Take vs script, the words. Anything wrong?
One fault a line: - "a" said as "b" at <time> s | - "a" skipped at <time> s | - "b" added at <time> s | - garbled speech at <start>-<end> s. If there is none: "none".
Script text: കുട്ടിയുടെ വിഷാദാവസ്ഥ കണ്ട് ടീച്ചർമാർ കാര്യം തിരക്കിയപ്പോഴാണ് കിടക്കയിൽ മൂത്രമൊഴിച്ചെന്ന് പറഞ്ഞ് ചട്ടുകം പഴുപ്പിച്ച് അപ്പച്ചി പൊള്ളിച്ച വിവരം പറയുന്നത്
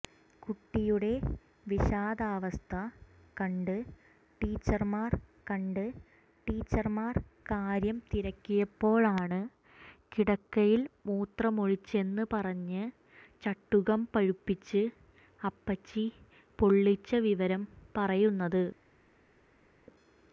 - "കണ്ട് ടീച്ചർമാർ" added at 5.5 s